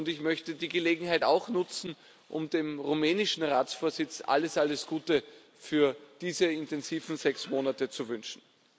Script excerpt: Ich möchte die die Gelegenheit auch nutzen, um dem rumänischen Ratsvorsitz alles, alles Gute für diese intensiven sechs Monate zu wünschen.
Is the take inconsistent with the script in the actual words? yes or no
yes